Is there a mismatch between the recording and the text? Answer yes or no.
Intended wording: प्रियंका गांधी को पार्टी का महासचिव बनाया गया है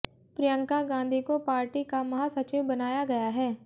no